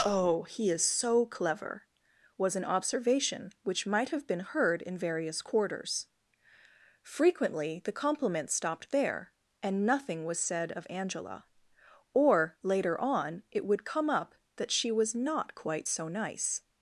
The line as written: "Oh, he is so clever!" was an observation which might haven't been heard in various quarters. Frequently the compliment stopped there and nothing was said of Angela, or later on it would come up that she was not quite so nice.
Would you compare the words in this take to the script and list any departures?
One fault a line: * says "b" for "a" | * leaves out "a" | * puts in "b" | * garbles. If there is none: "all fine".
* says "have" for "haven't"